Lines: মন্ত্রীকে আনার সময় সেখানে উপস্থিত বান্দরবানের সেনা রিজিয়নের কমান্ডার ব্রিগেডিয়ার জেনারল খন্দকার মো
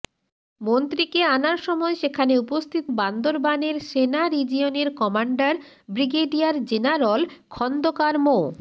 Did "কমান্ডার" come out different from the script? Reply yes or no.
no